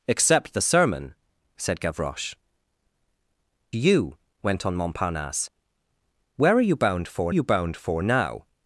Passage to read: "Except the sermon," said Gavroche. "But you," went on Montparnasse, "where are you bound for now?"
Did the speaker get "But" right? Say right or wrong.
wrong